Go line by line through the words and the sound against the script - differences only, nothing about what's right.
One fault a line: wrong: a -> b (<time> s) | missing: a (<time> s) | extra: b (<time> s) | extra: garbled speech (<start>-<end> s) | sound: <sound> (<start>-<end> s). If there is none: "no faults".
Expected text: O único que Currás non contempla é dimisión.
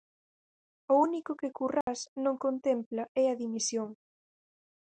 sound: dropout (1.8-1.9 s)
extra: a (3.3 s)